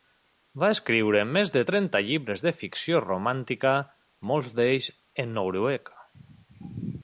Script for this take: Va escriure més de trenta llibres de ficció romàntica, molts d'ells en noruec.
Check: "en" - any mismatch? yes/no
no